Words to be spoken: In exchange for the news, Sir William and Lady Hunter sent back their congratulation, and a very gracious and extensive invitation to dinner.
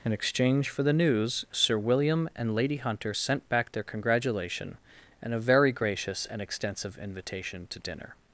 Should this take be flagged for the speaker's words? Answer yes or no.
no